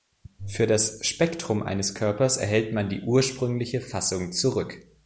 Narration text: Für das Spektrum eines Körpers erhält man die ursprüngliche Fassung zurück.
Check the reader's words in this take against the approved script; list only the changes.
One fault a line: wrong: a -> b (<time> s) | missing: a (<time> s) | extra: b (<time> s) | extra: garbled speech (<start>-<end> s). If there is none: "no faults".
no faults